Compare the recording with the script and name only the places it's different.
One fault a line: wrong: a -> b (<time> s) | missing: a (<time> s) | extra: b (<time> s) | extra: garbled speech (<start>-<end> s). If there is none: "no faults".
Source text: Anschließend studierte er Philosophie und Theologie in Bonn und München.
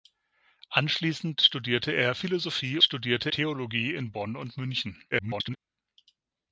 wrong: und -> studierte (2.8 s)
extra: garbled speech (5.1-5.6 s)